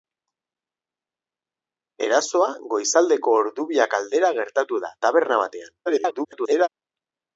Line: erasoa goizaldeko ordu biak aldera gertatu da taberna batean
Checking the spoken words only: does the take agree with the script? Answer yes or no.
no